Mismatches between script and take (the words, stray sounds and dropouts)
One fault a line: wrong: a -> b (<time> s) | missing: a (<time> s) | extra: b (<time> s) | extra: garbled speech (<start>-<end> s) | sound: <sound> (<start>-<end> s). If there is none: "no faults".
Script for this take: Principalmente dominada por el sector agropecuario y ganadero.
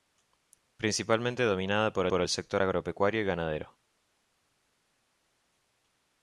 extra: por (2.1 s)